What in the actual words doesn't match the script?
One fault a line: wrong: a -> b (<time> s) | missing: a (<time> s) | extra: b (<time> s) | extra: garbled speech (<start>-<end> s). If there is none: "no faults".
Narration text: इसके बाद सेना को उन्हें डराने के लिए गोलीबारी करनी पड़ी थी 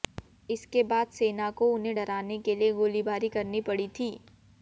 no faults